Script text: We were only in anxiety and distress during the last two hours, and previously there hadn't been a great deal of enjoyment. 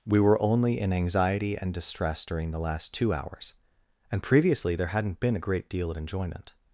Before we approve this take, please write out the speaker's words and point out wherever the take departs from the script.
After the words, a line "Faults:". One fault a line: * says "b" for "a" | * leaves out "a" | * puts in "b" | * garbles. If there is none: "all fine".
We were only in anxiety and distress during the last two hours, and previously there hadn't been a great deal of enjoyment.
Faults:
all fine